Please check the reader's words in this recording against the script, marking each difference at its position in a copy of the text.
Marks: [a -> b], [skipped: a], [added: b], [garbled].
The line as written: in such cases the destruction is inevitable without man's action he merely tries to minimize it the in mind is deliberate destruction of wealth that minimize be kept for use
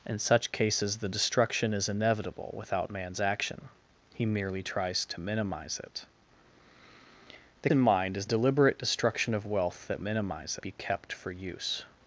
in such cases the destruction is inevitable without man's action he merely tries to minimize it the in mind is deliberate destruction of wealth that minimize be kept for use